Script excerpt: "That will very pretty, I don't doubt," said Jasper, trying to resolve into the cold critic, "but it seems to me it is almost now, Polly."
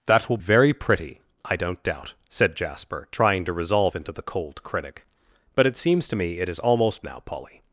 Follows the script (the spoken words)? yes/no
yes